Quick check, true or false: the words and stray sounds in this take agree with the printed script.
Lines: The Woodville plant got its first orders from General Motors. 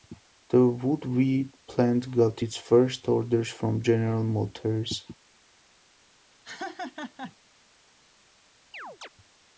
false